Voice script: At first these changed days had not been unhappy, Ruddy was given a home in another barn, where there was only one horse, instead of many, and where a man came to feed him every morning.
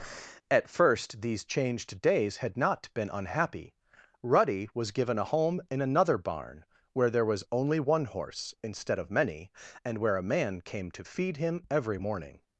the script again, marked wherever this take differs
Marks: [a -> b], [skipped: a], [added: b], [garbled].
At first these changed days had not been unhappy, Ruddy was given a home in another barn, where there was only one horse, instead of many, and where a man came to feed him every morning.